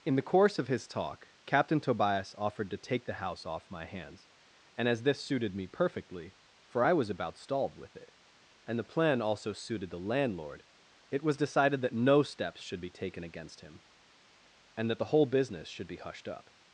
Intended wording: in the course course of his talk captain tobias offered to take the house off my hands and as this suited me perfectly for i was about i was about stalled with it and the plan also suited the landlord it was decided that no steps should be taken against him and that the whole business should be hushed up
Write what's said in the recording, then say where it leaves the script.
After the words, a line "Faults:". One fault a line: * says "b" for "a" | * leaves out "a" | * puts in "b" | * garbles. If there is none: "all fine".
in the course of his talk captain tobias offered to take the house off my hands and as this suited me perfectly for i was about stalled with it and the plan also suited the landlord it was decided that no steps should be taken against him and that the whole business should be hushed up
Faults:
* leaves out "course"
* leaves out "i was about"